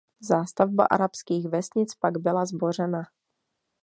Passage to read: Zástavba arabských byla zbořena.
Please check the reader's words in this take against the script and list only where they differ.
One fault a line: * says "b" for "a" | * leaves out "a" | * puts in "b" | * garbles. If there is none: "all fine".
* puts in "vesnic pak"